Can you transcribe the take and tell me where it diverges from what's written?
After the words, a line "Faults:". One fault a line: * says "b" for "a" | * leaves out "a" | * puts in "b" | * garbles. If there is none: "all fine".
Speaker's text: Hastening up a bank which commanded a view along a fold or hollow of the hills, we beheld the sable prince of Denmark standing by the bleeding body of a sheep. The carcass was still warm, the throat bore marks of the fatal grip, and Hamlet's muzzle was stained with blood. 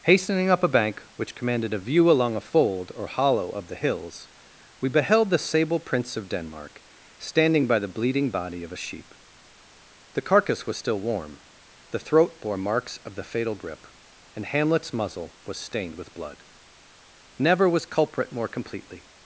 Hastening up a bank which commanded a view along a fold or hollow of the hills, we beheld the sable prince of Denmark standing by the bleeding body of a sheep. The carcass was still warm, the throat bore marks of the fatal grip, and Hamlet's muzzle was stained with blood. Never was culprit more completely
Faults:
* puts in "Never was culprit more completely"